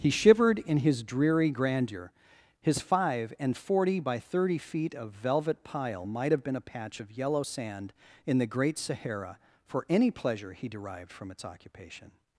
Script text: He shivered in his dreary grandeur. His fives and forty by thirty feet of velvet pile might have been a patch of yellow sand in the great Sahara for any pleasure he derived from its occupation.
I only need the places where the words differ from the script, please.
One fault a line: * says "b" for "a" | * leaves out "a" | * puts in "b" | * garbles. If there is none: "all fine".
* says "five" for "fives"